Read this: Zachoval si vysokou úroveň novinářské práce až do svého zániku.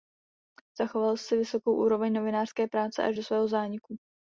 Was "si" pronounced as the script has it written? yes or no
yes